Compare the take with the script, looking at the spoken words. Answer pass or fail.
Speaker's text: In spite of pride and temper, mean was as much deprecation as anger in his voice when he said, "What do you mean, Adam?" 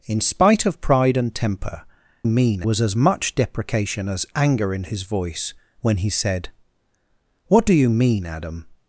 pass